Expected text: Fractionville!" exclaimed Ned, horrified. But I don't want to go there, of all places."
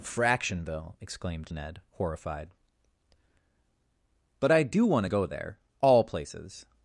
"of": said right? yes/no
no